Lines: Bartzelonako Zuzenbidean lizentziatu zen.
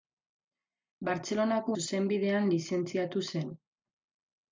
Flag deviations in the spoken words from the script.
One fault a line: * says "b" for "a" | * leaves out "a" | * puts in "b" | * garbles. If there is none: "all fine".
all fine